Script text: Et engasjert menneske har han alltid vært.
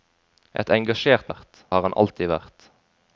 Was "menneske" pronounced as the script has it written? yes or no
no